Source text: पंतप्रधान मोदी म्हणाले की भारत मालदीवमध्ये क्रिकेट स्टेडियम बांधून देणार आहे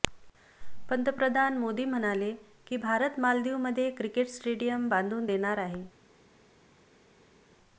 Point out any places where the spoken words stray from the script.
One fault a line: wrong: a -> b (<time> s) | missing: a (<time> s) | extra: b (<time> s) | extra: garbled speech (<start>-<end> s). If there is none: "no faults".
no faults